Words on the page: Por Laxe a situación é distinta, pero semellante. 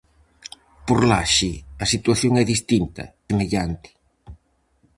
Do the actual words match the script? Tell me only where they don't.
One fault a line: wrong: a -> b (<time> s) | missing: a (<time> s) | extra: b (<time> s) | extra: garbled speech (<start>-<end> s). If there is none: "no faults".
missing: pero (3.0 s)